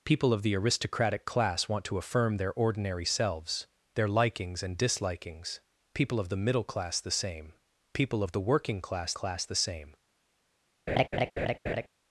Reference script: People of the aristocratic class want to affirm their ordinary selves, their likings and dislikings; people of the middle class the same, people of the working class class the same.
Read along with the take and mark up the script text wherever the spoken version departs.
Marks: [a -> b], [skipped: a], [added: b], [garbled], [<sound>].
People of the aristocratic class want to affirm their ordinary selves, their likings and dislikings; people of the middle class the same, people of the working class class the same. [laugh]